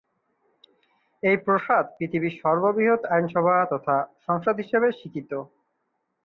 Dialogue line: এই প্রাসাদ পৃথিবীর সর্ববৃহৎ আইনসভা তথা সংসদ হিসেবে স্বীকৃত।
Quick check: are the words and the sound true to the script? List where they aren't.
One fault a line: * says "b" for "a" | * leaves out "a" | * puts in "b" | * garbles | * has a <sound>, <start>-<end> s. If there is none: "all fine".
all fine